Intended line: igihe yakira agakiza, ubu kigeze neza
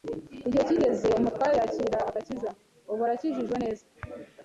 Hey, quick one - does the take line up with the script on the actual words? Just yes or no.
no